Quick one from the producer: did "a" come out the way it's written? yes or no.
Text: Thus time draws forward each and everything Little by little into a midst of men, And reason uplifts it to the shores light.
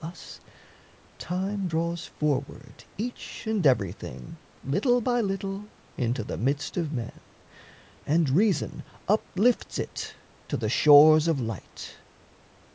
no